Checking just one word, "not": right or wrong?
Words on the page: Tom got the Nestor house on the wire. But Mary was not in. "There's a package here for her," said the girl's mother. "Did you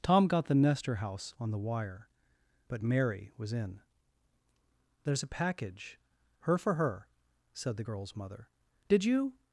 wrong